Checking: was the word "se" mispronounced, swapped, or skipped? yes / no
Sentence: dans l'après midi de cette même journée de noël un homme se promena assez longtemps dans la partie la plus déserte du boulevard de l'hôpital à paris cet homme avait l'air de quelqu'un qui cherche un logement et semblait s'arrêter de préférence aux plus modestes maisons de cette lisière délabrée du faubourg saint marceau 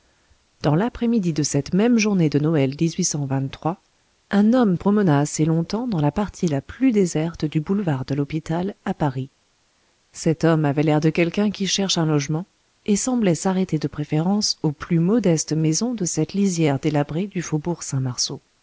yes